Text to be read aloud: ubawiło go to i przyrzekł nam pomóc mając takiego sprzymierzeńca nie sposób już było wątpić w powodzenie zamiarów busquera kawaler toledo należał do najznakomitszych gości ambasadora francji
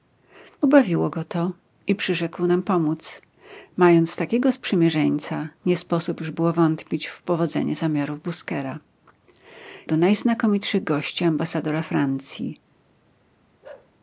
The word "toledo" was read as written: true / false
false